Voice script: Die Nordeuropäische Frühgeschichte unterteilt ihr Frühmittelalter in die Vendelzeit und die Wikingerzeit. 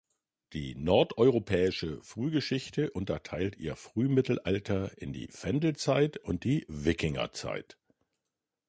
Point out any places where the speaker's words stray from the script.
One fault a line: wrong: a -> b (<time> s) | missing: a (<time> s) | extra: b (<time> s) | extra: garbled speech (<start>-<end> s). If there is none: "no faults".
no faults